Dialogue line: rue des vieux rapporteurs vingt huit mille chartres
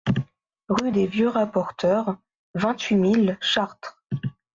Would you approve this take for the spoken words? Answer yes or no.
yes